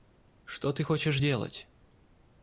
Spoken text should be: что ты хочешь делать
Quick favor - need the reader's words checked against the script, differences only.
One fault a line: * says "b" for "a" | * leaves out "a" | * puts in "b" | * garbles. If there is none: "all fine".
all fine